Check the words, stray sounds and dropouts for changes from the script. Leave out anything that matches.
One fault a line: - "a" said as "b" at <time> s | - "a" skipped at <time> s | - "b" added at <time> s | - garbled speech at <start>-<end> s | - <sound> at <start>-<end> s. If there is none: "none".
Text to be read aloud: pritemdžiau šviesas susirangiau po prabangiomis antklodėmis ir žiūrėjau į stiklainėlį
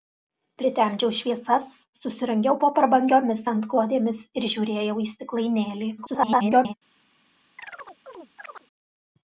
- garbled speech at 6.0-6.7 s
- chirp at 7.6-8.7 s